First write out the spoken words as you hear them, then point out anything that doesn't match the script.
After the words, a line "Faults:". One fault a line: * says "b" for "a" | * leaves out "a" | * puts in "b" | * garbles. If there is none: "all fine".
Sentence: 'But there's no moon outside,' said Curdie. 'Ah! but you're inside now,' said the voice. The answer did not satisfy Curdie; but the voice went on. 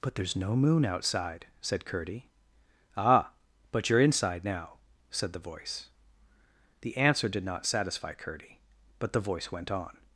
'But there's no moon outside,' said Curdie. 'Ah! but you're inside now,' said the voice. The answer did not satisfy Curdie; but the voice went on.
Faults:
all fine